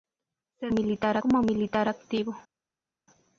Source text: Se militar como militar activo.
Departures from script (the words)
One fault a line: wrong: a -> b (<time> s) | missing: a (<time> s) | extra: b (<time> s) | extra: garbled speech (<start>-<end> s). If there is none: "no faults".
no faults